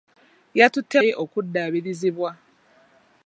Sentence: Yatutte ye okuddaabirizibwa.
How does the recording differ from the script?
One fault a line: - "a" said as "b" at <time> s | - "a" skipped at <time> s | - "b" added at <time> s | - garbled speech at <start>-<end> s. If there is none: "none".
none